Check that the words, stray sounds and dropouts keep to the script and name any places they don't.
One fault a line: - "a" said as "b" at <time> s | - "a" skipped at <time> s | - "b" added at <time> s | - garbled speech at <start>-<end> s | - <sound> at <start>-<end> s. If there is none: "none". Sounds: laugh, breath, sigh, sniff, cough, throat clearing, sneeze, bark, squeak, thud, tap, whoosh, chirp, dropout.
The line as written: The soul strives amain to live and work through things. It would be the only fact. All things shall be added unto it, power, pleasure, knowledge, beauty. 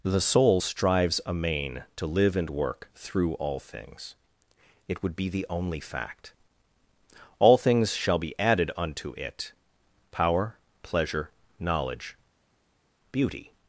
- "all" added at 3.3 s